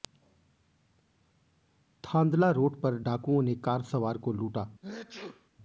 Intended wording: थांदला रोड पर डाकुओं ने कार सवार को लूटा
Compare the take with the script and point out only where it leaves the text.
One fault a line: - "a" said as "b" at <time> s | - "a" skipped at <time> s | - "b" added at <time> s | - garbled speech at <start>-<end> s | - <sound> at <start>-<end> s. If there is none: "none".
- sneeze at 4.8-5.5 s